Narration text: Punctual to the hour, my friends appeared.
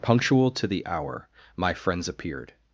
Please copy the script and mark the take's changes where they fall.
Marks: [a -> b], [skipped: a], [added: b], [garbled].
Punctual to the hour, my friends appeared.